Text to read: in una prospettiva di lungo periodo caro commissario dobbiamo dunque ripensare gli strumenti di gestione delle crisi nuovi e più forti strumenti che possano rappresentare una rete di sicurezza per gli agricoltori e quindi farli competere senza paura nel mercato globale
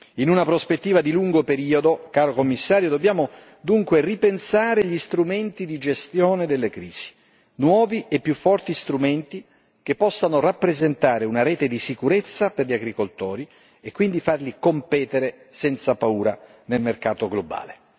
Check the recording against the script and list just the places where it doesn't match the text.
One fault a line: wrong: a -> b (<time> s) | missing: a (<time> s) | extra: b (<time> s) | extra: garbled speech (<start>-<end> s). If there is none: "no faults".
no faults